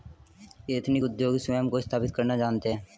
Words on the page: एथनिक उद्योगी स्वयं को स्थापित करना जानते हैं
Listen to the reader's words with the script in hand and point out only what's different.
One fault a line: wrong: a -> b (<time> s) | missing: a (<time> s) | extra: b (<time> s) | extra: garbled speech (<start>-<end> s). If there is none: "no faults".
no faults